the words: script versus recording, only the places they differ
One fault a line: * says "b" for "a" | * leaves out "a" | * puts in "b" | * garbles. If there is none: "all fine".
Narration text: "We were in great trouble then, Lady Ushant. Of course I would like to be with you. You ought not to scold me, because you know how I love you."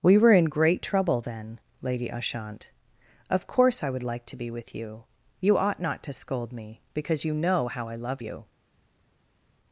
all fine